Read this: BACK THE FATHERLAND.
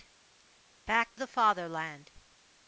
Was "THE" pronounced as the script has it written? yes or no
yes